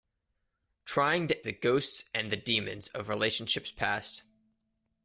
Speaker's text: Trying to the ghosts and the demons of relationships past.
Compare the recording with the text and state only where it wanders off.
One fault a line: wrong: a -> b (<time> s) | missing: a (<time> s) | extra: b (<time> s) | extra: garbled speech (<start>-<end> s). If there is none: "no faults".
no faults